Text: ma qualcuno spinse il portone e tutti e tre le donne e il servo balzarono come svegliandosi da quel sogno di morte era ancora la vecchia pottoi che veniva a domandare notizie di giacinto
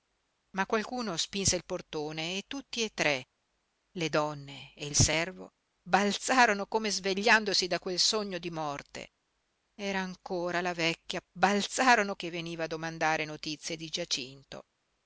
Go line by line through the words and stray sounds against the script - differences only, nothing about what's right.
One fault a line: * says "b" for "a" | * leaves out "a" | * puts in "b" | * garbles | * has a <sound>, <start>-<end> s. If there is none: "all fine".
* says "balzarono" for "pottoi"